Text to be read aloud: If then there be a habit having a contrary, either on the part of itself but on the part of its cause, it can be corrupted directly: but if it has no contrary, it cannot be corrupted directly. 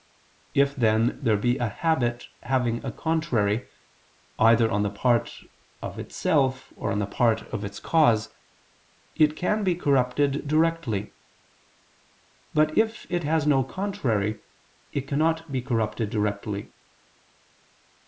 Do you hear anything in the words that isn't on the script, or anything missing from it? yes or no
yes